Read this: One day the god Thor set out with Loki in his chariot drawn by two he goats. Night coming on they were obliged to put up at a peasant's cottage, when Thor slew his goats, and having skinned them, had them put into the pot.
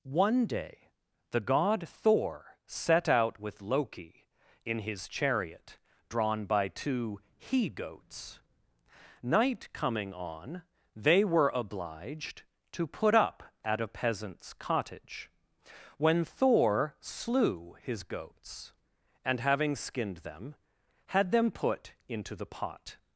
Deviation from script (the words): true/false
false